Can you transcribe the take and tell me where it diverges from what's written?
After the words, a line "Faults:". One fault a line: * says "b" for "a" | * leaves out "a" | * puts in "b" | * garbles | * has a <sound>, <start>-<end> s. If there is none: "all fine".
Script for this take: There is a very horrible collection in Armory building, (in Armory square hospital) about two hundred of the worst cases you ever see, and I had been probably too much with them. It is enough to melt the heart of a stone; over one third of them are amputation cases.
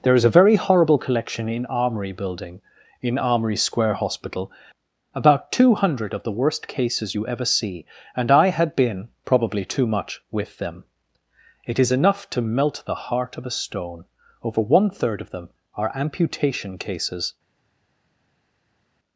There is a very horrible collection in Armory building, (in Armory square hospital) about two hundred of the worst cases you ever see, and I had been probably too much with them. It is enough to melt the heart of a stone; over one third of them are amputation cases.
Faults:
all fine